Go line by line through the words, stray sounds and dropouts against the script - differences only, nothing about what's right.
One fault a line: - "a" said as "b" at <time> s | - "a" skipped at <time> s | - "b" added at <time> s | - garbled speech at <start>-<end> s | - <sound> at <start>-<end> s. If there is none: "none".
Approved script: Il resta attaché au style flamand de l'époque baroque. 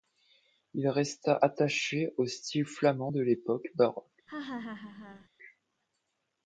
- laugh at 4.3-5.3 s